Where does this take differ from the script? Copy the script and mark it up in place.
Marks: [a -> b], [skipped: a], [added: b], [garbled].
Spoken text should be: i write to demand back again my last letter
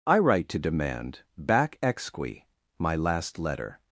i write to demand back [again -> exqui] my last letter